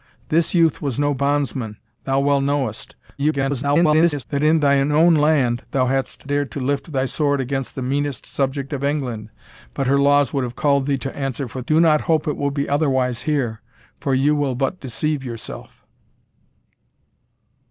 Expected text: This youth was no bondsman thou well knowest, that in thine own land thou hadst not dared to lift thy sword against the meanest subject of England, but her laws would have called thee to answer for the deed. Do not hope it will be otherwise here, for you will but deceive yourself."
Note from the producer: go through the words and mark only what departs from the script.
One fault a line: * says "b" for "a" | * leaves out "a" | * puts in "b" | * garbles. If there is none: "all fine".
* garbles
* leaves out "not"
* leaves out "the deed"